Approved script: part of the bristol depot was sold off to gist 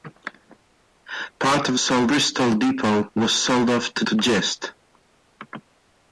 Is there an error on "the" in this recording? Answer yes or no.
yes